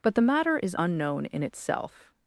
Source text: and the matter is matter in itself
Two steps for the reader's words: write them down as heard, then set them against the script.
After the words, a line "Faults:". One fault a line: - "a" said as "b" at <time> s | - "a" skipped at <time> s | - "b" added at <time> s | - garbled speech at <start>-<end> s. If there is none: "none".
but the matter is unknown in itself
Faults:
- "and" said as "but" at 0.0 s
- "matter" said as "unknown" at 0.8 s